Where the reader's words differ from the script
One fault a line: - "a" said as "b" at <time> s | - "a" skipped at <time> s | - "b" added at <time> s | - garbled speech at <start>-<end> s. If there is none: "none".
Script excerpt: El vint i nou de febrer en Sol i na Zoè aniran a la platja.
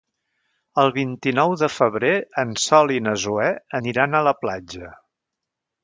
none